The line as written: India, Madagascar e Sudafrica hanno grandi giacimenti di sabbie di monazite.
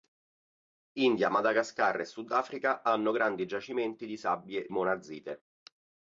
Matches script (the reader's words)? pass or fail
fail